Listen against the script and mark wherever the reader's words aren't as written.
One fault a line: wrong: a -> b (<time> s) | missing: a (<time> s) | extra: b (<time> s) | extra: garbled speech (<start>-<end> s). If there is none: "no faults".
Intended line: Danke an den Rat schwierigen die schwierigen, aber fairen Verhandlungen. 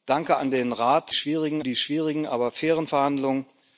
no faults